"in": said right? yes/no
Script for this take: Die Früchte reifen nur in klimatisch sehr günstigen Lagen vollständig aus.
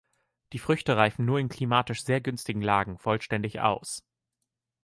yes